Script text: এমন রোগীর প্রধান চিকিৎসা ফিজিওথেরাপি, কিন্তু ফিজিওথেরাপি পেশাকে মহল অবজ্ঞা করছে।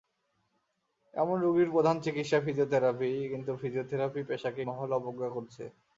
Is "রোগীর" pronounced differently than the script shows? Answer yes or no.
no